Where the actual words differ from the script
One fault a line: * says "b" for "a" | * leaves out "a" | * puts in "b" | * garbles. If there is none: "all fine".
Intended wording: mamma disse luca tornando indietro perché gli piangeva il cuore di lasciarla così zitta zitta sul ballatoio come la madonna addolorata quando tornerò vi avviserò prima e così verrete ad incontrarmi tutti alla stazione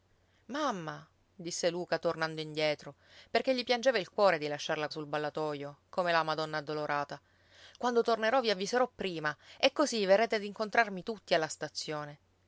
* leaves out "così zitta zitta"